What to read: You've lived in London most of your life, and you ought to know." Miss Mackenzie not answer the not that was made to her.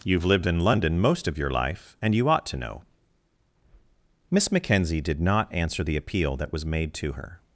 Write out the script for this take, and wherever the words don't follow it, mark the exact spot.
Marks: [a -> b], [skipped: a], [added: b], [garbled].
You've lived in London most of your life, and you ought to know." Miss Mackenzie [added: did] not answer the [not -> appeal] that was made to her.